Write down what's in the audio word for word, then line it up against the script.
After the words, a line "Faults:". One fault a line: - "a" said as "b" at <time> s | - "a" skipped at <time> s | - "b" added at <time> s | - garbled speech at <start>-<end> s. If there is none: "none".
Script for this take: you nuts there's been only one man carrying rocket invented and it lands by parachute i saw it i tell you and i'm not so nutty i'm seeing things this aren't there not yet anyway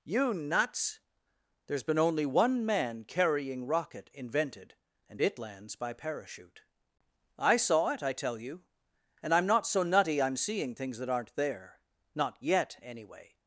you nuts there's been only one man carrying rocket invented and it lands by parachute i saw it i tell you and i'm not so nutty i'm seeing things that aren't there not yet anyway
Faults:
- "this" said as "that" at 11.0 s